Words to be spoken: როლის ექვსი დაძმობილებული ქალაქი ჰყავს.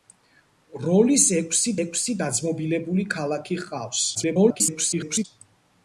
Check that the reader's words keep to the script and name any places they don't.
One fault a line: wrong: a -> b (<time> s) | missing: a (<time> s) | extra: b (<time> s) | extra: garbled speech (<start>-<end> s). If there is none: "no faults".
extra: ექვსი (1.8 s)
extra: garbled speech (4.1-5.2 s)